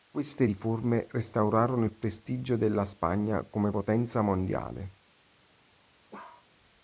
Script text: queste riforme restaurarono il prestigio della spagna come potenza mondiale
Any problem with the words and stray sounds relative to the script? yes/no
yes